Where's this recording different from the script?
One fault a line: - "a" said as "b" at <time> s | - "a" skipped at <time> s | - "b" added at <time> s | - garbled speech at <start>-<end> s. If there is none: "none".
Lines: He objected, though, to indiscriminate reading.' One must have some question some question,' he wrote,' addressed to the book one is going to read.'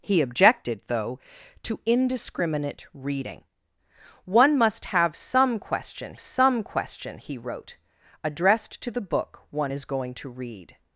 none